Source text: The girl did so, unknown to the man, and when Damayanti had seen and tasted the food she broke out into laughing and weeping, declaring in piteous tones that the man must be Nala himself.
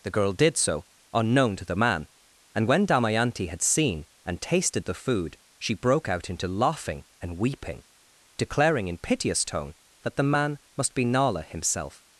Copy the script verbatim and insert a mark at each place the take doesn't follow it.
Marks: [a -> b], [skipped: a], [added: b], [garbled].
The girl did so, unknown to the man, and when Damayanti had seen and tasted the food she broke out into laughing and weeping, declaring in piteous [tones -> tone] that the man must be Nala himself.